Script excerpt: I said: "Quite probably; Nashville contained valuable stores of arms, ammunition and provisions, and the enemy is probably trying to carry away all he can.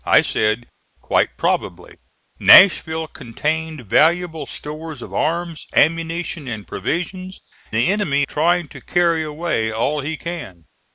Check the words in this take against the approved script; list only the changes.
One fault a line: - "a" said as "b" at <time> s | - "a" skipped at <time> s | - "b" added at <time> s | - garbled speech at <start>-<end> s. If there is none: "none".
- "and" skipped at 7.4 s
- "is probably" skipped at 8.2 s